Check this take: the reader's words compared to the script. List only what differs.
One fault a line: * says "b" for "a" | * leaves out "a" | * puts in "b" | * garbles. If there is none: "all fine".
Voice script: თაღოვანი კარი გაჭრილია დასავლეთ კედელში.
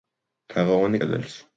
* leaves out "კარი გაჭრილია დასავლეთ"